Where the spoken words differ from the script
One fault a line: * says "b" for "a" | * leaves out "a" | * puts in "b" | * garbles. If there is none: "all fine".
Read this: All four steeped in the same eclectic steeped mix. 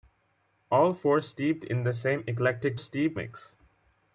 all fine